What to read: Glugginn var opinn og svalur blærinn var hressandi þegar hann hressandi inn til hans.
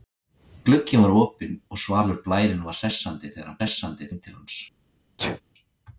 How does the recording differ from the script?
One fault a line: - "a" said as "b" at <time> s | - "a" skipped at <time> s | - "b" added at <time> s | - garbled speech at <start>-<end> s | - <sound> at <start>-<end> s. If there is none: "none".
- sneeze at 5.2-5.4 s